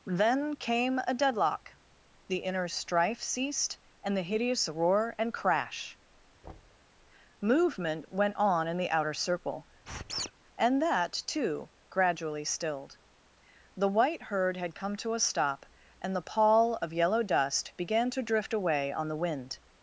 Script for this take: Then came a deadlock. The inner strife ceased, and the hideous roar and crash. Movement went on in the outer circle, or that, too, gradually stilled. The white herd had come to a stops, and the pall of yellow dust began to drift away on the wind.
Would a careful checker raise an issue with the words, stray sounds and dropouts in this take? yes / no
yes